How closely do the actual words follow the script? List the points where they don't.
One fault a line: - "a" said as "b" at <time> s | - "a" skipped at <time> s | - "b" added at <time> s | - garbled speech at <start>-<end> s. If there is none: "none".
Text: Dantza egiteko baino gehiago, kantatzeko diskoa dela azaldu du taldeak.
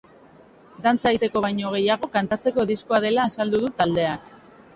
none